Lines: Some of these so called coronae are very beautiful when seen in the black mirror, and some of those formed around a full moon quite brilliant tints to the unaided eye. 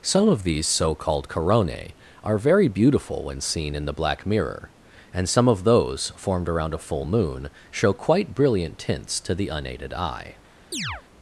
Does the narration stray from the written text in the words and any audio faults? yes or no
yes